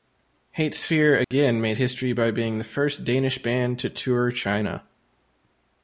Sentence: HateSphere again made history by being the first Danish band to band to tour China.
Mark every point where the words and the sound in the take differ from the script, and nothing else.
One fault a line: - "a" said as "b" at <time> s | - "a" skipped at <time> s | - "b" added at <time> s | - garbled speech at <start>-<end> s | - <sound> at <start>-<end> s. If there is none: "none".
- dropout at 1.2-1.3 s
- "band to" skipped at 3.9 s